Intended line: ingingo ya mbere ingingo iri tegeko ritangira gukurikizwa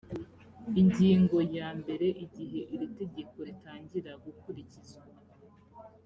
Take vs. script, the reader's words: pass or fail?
fail